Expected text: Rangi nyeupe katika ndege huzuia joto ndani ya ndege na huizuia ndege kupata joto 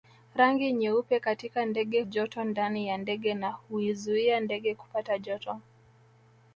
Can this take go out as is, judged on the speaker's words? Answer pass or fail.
fail